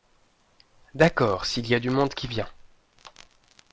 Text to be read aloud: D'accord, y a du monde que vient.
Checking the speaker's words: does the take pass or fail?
fail